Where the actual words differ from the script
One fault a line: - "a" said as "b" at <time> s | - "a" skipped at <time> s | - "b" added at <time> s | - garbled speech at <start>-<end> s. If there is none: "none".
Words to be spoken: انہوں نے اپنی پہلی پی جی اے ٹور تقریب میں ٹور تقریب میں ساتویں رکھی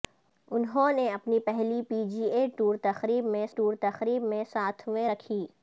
none